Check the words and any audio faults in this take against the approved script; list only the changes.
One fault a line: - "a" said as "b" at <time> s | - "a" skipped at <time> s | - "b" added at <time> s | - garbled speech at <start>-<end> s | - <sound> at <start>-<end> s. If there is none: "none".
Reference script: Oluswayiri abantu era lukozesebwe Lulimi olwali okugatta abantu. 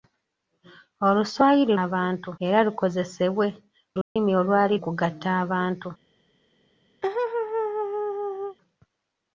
- dropout at 4.0-4.2 s
- laugh at 7.0-8.6 s